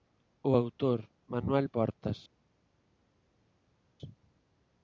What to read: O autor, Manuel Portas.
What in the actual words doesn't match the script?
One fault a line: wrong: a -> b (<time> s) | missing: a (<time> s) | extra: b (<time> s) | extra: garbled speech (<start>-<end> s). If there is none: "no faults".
no faults